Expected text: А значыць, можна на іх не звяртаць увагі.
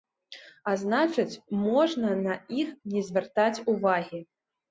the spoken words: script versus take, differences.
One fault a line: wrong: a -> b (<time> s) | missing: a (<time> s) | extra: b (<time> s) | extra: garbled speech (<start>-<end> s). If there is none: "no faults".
no faults